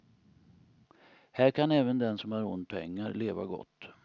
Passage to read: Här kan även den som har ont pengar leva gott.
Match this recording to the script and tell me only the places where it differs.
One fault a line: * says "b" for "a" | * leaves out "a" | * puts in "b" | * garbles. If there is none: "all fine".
all fine